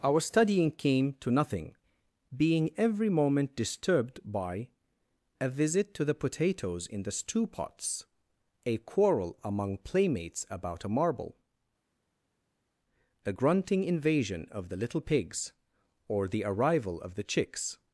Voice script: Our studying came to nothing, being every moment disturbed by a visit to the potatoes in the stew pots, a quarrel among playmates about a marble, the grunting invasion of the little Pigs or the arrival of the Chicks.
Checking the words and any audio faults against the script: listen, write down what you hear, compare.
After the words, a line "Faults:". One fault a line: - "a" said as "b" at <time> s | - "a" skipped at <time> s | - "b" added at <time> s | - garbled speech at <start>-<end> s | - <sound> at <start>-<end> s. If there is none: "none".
Our studying came to nothing, being every moment disturbed by a visit to the potatoes in the stew pots, a quarrel among playmates about a marble, the grunting invasion of the little Pigs or the arrival of the Chicks.
Faults:
none